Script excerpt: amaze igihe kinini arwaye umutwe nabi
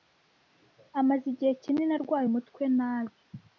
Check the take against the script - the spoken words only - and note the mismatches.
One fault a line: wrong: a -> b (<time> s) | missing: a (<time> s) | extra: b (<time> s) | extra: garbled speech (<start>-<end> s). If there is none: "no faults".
no faults